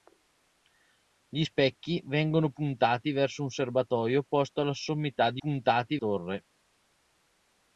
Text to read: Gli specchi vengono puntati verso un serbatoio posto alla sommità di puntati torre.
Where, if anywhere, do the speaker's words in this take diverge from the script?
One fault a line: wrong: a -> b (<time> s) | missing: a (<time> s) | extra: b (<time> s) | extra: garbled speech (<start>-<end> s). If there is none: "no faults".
no faults